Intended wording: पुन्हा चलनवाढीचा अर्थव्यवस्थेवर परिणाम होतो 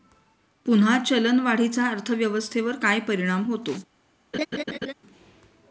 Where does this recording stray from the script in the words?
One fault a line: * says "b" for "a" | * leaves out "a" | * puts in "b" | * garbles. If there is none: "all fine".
* puts in "काय"